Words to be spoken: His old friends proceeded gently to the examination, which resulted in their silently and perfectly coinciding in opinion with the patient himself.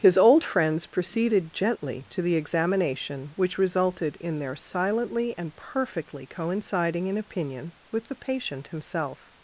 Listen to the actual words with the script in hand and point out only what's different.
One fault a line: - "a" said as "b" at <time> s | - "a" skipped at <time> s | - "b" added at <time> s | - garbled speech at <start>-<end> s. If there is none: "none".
none